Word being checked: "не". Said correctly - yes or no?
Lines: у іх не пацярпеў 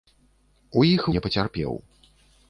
yes